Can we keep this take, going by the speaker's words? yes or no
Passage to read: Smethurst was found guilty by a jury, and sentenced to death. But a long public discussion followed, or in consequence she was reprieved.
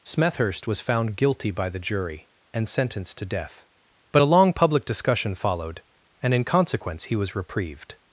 no